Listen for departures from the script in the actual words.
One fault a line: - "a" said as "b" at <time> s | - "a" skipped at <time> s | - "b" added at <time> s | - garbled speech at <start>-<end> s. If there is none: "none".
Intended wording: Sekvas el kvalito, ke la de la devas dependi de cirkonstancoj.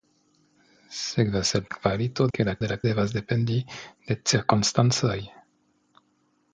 none